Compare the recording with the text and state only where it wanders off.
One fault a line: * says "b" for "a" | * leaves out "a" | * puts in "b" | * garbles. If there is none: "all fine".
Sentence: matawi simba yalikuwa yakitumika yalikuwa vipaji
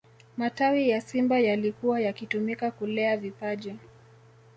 * puts in "ya"
* says "kulea" for "yalikuwa"